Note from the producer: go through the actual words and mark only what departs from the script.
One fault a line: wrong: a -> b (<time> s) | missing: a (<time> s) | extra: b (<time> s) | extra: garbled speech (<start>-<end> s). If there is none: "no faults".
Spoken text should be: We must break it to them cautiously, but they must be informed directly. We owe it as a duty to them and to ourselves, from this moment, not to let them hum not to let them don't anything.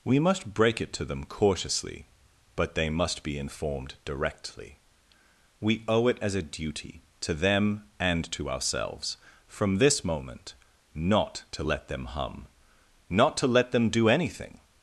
wrong: don't -> do (13.9 s)